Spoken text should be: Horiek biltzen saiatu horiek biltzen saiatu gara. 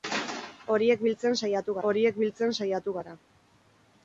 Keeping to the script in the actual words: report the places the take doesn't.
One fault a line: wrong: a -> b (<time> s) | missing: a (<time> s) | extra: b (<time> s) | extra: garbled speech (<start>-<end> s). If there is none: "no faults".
no faults